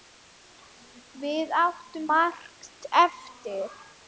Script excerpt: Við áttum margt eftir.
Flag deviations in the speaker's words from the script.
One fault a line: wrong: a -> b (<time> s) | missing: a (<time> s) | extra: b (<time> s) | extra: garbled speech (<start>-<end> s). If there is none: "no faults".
no faults